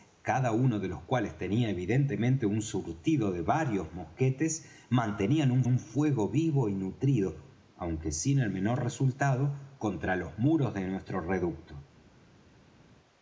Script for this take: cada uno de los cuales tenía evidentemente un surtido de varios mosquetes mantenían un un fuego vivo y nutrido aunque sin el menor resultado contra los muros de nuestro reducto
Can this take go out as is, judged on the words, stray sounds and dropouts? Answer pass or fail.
pass